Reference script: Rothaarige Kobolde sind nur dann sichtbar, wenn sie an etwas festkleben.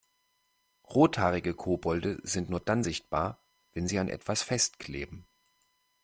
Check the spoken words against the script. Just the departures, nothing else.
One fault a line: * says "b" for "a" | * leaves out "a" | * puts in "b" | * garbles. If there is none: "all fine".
all fine